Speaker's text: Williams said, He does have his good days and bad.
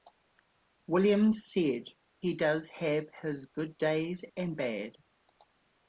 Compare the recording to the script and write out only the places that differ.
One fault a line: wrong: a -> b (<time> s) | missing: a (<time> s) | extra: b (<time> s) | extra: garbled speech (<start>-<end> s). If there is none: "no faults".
no faults